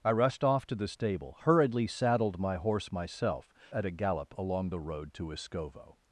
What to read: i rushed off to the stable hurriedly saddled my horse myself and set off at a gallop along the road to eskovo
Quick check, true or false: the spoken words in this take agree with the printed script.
false